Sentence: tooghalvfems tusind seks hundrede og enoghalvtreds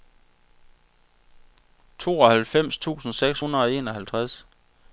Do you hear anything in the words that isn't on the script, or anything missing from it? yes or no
no